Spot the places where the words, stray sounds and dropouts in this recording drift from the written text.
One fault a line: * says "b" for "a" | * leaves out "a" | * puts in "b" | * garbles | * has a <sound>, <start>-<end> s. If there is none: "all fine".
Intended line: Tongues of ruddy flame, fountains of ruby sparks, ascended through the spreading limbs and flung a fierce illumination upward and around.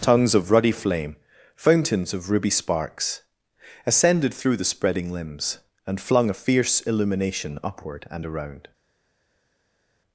all fine